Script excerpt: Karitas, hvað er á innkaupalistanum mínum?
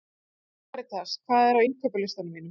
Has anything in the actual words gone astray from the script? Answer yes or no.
no